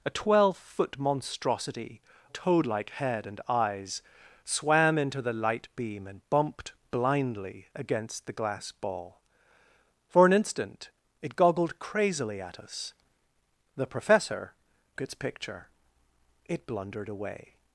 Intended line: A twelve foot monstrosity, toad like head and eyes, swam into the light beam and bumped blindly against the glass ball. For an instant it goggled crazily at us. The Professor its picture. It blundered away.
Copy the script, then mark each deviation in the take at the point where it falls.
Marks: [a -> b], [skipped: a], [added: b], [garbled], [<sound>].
A twelve foot monstrosity, toad like head and eyes, swam into the light beam and bumped blindly against the glass ball. For an instant it goggled crazily at us. The Professor its picture. It blundered away.